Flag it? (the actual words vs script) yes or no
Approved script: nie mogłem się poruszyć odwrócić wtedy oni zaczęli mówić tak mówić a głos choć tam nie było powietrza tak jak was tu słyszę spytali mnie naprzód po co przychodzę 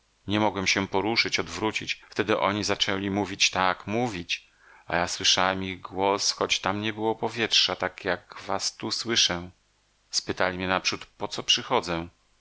yes